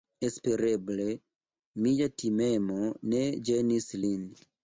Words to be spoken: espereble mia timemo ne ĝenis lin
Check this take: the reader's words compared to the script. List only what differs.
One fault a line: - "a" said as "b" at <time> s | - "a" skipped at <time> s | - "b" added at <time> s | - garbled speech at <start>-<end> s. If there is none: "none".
none